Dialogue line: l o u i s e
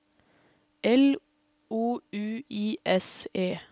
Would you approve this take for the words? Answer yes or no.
yes